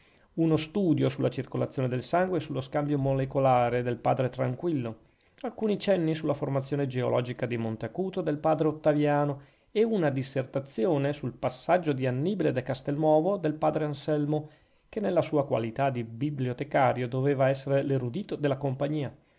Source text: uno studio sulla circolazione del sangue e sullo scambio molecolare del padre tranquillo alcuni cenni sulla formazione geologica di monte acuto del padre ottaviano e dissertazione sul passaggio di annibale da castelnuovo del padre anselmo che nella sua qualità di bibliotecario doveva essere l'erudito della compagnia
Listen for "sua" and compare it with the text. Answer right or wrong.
right